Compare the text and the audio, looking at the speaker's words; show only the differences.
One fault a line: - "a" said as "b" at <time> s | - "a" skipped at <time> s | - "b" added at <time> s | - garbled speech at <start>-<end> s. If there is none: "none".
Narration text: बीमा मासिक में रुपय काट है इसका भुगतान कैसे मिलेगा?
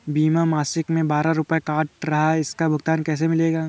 - "बारह" added at 1.1 s
- "रहा" added at 2.0 s